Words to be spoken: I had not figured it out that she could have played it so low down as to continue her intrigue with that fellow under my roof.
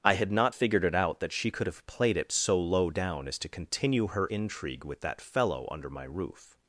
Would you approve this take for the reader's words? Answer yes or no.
yes